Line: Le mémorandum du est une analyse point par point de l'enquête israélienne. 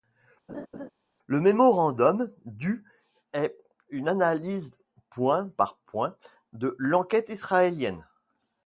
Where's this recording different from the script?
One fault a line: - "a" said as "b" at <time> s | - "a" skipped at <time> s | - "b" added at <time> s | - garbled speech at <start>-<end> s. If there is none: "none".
none